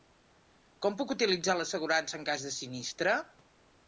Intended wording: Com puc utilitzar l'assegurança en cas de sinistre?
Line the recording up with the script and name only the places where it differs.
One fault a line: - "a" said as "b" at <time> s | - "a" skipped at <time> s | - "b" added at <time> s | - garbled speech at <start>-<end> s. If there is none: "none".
none